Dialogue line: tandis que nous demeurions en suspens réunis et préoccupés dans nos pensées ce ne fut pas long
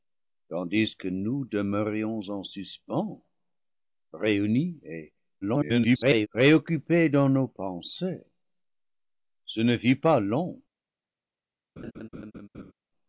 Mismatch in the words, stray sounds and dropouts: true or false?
true